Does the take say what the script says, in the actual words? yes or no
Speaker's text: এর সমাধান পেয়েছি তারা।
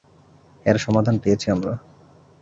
no